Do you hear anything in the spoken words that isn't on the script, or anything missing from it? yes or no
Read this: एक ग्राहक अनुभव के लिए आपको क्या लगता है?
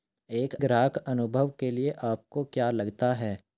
no